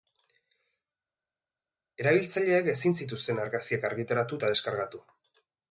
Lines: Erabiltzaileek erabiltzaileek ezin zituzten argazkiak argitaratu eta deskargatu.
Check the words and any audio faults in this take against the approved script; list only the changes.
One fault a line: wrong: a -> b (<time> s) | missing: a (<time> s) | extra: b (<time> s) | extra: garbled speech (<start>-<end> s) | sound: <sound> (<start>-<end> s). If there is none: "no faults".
missing: erabiltzaileek (2.7 s)